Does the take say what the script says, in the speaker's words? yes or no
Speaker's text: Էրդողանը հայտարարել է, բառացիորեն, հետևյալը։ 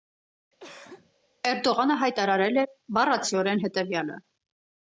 yes